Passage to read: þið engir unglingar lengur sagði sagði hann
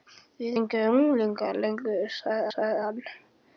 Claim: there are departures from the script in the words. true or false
false